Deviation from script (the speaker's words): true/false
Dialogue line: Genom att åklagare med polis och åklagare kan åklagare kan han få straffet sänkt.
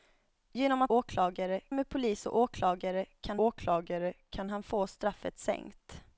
false